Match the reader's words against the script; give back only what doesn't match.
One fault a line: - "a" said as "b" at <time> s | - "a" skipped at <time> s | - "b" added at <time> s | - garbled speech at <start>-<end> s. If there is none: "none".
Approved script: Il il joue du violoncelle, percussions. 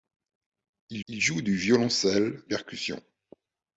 none